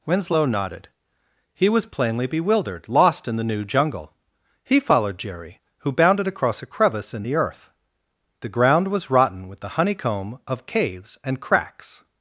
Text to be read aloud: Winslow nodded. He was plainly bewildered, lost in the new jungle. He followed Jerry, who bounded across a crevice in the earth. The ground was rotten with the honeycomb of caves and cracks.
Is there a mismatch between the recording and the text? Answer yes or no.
no